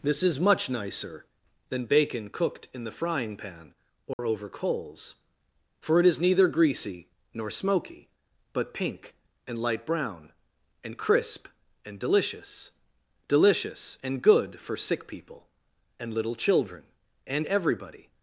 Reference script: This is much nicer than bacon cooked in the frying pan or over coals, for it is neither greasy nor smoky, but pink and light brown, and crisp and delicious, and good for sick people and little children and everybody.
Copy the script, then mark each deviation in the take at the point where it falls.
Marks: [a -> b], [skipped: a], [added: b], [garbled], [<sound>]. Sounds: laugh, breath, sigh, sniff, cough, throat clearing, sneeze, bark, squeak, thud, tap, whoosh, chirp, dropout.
This is much nicer than bacon cooked in the frying pan or [dropout] over coals, for it is neither greasy nor smoky, but pink and light brown, and crisp and delicious, [added: delicious] and good for sick people and little children and everybody.